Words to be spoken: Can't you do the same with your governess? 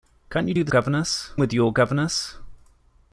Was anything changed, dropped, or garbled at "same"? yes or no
yes